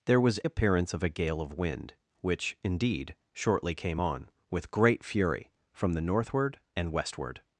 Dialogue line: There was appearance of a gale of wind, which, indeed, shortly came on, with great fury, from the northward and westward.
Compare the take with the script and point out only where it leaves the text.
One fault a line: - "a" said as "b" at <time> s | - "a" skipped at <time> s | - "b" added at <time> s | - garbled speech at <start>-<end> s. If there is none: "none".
none